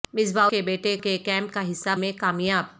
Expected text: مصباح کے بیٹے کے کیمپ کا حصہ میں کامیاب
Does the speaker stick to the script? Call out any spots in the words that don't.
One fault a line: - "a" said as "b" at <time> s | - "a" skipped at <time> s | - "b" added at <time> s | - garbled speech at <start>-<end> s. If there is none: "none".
none